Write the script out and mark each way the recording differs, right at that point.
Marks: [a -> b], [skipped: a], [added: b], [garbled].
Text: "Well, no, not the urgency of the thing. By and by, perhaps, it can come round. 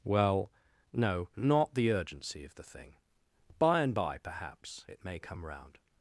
"Well, no, not the urgency of the thing. By and by, perhaps, it [can -> may] come round.